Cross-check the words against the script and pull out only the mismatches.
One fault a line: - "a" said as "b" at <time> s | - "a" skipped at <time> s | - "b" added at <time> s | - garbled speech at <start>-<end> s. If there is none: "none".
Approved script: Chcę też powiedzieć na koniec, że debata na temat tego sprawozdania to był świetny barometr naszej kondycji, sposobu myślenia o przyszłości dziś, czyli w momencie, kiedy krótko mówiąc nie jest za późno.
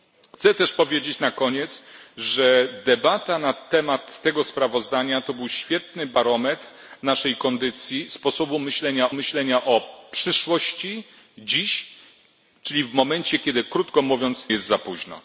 - "myślenia" added at 9.1 s
- "nie" skipped at 14.5 s